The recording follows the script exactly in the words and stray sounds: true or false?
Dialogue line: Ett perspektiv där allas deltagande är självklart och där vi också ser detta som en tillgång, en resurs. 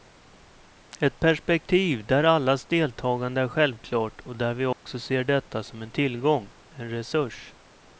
false